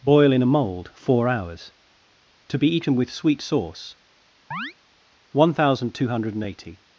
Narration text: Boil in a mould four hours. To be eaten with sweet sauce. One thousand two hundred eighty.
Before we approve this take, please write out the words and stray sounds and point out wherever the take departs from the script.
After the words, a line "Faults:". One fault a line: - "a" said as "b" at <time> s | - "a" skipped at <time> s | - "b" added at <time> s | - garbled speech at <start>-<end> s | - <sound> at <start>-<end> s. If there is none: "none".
Boil in a mould four hours. To be eaten with sweet sauce. One thousand two hundred eighty.
Faults:
- chirp at 4.5-4.7 s